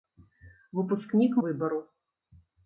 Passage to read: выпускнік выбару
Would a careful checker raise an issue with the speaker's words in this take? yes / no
no